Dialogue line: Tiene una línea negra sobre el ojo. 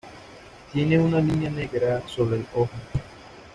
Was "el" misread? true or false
false